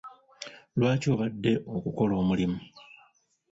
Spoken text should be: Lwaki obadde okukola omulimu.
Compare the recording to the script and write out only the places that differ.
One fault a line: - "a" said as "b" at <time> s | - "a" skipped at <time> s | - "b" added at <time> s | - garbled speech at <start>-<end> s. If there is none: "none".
none